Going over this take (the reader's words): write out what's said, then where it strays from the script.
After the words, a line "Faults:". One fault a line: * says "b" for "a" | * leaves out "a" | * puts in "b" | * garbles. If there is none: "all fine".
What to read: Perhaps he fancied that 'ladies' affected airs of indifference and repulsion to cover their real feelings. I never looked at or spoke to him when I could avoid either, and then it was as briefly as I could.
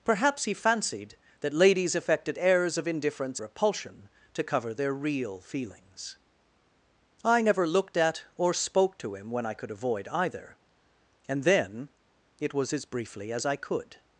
Perhaps he fancied that 'ladies' affected airs of indifference repulsion to cover their real feelings. I never looked at or spoke to him when I could avoid either, and then it was as briefly as I could.
Faults:
* leaves out "and"